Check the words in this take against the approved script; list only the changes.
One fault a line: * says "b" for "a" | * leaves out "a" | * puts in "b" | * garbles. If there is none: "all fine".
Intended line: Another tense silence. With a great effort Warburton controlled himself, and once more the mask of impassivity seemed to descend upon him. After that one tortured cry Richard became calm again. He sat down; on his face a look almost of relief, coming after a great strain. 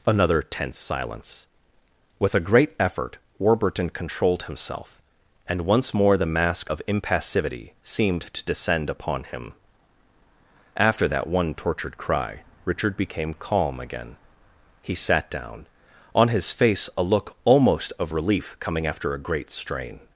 all fine